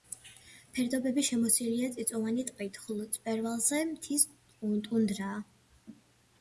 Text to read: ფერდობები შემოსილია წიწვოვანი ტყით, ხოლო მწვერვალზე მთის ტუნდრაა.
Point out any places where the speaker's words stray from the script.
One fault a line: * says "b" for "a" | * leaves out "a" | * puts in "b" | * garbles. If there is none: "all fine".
all fine